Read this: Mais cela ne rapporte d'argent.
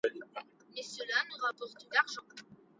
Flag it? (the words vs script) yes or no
no